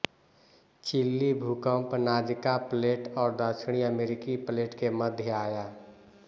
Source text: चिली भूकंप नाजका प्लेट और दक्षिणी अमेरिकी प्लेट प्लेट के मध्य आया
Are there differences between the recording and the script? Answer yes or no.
yes